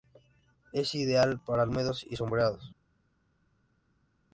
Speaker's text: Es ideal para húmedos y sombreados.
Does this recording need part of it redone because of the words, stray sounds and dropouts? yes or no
no